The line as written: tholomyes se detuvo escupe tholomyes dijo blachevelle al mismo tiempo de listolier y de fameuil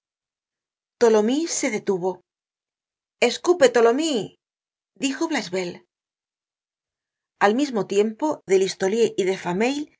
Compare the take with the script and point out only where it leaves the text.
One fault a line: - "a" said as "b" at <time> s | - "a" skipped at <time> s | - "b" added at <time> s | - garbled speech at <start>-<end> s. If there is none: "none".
none